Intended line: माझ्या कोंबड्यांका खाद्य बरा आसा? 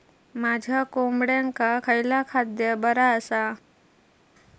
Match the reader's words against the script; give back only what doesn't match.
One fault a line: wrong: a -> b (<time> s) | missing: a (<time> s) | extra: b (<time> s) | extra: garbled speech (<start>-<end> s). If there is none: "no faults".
extra: खयला (1.8 s)